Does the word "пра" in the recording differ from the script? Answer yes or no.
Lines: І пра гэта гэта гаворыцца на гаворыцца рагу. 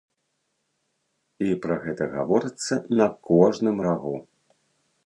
no